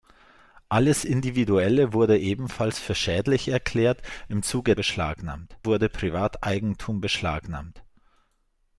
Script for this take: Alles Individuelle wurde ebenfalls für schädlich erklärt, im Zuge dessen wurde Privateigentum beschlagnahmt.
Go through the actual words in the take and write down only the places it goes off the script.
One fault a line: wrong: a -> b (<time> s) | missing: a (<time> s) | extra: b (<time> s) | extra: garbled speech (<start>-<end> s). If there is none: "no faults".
wrong: dessen -> beschlagnahmt (4.7 s)